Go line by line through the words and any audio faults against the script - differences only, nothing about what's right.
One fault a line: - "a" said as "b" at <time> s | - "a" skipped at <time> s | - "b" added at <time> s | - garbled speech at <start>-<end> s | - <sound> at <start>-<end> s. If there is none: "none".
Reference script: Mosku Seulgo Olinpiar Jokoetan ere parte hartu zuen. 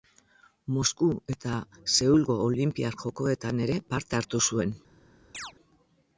- "eta" added at 1.3 s
- chirp at 5.3-5.5 s